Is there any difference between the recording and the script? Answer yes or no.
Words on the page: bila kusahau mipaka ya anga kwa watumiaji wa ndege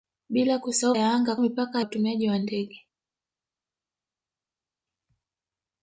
yes